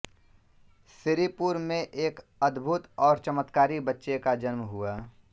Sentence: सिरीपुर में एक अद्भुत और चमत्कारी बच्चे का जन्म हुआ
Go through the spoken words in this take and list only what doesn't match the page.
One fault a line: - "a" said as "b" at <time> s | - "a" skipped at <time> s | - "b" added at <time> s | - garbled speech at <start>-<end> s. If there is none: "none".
none